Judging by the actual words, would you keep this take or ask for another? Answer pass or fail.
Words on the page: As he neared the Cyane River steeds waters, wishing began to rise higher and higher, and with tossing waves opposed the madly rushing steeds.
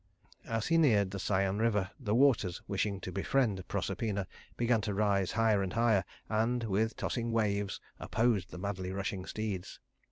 fail